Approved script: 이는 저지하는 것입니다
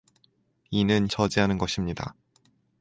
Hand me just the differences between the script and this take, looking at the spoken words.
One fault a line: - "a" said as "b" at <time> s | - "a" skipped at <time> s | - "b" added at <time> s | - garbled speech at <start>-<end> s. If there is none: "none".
none